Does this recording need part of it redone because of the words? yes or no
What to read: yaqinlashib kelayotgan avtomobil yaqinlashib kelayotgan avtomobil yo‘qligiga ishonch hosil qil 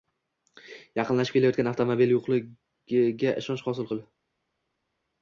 yes